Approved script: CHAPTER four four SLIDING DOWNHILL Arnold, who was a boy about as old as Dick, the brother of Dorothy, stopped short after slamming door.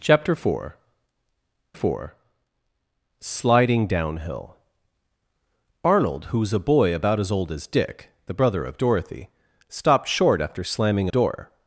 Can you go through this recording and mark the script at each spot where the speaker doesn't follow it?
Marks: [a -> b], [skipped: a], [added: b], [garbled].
CHAPTER four four SLIDING DOWNHILL Arnold, who was a boy about as old as Dick, the brother of Dorothy, stopped short after slamming door.